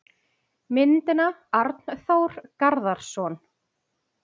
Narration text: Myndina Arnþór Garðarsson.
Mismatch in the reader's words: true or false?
false